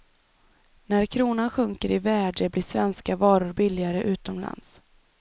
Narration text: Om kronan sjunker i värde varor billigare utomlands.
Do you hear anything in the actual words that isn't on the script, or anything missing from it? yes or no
yes